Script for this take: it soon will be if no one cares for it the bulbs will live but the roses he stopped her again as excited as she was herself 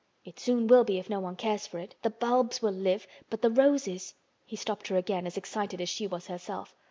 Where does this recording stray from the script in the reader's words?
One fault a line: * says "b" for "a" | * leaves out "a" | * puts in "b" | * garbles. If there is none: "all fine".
all fine